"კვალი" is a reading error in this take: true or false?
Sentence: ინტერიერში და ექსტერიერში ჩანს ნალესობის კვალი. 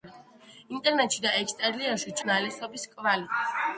false